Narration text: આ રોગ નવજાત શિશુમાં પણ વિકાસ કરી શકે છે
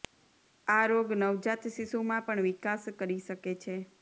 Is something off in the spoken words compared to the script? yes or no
no